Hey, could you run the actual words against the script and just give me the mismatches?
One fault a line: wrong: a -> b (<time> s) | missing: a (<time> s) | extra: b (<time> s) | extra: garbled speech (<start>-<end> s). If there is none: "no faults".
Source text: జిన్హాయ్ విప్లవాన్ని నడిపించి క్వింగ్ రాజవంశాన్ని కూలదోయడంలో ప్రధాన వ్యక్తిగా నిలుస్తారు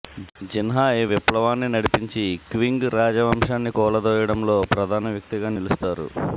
no faults